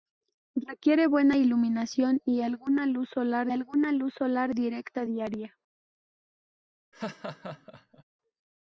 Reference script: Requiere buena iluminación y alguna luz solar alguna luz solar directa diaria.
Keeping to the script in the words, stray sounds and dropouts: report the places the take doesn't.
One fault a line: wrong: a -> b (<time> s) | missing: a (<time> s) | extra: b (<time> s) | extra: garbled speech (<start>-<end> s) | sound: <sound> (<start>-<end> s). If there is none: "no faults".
sound: laugh (6.9-8.0 s)